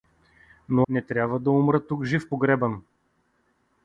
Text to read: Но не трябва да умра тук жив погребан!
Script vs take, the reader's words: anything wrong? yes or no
no